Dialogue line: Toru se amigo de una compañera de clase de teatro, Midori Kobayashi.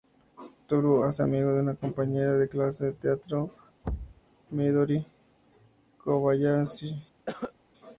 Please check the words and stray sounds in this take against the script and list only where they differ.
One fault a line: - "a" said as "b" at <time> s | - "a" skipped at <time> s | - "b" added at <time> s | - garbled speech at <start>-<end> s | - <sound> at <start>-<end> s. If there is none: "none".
- "hace" added at 1.1 s
- thud at 3.8-4.2 s
- cough at 7.3-7.5 s